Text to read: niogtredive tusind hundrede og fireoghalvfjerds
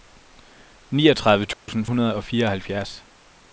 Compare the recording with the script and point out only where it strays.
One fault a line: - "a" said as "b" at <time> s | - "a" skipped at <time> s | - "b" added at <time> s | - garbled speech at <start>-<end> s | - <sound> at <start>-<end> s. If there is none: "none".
- dropout at 1.5-1.7 s